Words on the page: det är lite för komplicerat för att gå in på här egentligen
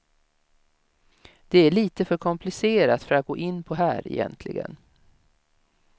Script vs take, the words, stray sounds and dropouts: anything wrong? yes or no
no